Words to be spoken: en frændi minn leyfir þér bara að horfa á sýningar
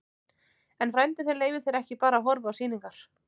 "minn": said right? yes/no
no